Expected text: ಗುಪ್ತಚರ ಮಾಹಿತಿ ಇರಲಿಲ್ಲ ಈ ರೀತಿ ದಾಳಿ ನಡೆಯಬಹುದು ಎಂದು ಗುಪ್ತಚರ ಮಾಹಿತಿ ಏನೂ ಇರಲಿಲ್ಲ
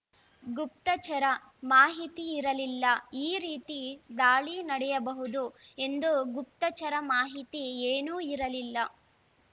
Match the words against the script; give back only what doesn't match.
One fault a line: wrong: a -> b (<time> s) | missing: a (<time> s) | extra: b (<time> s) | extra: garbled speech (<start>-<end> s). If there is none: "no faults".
no faults